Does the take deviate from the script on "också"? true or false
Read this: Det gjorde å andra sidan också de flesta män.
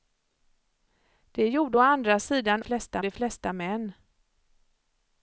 true